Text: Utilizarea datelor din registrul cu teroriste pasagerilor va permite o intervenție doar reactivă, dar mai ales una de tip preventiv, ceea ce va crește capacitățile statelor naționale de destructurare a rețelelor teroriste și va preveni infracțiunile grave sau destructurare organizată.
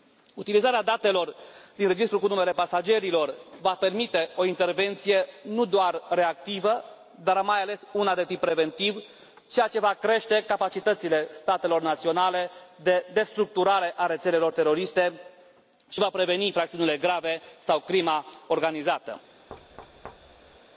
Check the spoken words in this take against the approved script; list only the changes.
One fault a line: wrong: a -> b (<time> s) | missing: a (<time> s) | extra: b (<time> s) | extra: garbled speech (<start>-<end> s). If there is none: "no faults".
wrong: teroriste -> numele (2.3 s)
extra: nu (5.4 s)
wrong: destructurare -> crima (17.8 s)